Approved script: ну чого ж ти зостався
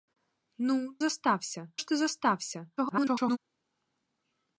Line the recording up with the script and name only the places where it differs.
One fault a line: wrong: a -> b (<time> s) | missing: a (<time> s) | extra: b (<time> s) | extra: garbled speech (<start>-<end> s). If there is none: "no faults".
wrong: чого -> зостався (1.0 s)
extra: garbled speech (2.8-3.4 s)